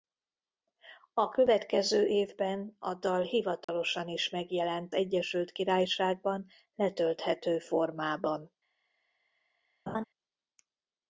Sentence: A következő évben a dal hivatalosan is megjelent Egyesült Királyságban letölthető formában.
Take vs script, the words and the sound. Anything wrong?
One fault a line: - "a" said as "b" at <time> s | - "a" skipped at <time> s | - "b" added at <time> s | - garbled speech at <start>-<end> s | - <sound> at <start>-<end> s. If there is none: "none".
- dropout at 3.6-3.7 s
- laugh at 9.9-10.1 s